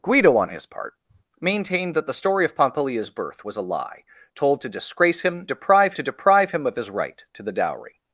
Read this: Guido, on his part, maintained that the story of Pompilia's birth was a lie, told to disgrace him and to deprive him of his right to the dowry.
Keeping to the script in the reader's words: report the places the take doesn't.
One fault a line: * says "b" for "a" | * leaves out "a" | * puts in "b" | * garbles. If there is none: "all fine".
* says "deprive" for "and"